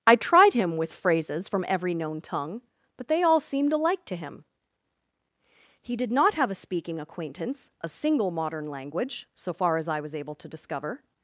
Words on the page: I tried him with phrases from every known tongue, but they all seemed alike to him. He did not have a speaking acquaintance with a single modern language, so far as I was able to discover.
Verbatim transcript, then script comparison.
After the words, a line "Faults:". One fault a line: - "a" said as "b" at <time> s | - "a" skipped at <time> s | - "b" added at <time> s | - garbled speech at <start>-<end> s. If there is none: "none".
I tried him with phrases from every known tongue, but they all seemed alike to him. He did not have a speaking acquaintance a single modern language, so far as I was able to discover.
Faults:
- "with" skipped at 7.7 s